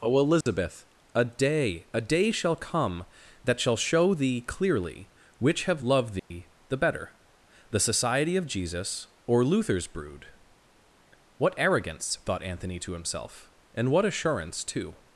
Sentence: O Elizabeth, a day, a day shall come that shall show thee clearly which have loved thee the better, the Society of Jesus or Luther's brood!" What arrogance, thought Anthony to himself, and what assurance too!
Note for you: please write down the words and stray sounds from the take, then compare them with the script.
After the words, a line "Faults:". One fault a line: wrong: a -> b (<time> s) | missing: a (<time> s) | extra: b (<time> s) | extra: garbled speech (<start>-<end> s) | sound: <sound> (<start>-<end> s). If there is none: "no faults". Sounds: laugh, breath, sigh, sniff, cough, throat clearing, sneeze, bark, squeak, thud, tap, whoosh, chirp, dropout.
O Elizabeth, a day, a day shall come that shall show thee clearly which have loved thee the better, the Society of Jesus or Luther's brood!" What arrogance, thought Anthony to himself, and what assurance too!
Faults:
sound: dropout (0.4-0.5 s)
sound: dropout (6.2-6.3 s)